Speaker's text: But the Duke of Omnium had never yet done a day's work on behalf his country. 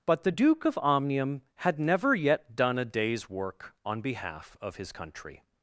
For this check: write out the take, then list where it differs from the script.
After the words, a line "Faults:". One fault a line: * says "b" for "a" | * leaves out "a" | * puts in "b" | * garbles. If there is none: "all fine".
But the Duke of Omnium had never yet done a day's work on behalf of his country.
Faults:
* puts in "of"